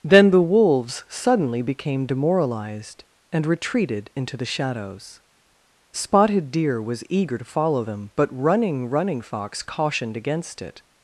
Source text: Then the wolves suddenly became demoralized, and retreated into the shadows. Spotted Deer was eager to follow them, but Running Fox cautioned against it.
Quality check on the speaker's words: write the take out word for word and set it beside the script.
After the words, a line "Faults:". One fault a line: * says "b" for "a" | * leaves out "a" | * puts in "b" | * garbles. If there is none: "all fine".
Then the wolves suddenly became demoralized, and retreated into the shadows. Spotted Deer was eager to follow them, but Running Running Fox cautioned against it.
Faults:
* puts in "Running"